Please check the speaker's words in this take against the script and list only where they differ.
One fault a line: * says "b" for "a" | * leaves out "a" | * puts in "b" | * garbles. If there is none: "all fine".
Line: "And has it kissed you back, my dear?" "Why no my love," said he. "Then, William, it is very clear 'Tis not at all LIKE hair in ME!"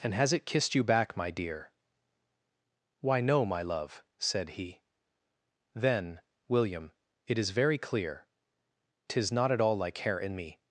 all fine